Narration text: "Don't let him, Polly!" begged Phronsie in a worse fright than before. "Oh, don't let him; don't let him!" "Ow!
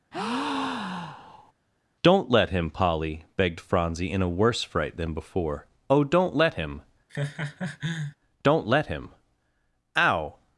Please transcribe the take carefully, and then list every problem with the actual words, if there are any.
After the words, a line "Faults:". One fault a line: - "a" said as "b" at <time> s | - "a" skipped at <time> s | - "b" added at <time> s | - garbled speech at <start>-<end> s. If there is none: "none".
"Don't let him, Polly!" begged Phronsie in a worse fright than before. "Oh, don't let him; don't let him!" "Ow!
Faults:
none